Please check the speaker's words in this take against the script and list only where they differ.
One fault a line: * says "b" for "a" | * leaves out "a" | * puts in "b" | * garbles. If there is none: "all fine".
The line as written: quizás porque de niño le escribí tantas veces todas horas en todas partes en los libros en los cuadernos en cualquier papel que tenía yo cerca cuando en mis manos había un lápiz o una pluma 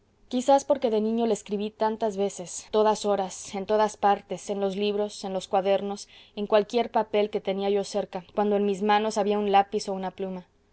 all fine